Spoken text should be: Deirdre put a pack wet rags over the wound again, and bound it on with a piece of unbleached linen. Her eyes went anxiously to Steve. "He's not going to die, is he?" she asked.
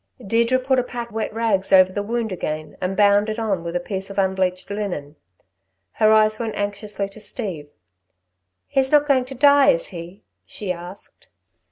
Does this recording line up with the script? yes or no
yes